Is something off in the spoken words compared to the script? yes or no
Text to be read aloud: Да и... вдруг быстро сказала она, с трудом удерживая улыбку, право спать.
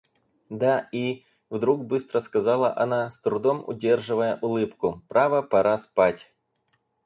yes